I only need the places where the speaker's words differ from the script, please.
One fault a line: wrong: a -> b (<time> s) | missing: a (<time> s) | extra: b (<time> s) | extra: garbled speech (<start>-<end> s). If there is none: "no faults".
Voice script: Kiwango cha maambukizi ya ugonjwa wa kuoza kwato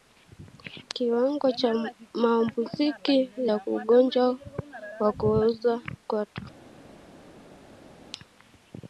no faults